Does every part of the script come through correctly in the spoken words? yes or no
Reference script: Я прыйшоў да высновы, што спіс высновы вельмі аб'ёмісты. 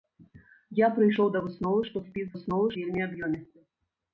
yes